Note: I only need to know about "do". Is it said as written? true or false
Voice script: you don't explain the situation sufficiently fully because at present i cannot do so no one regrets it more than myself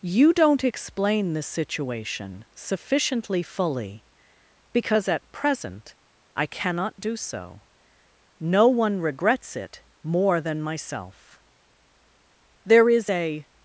true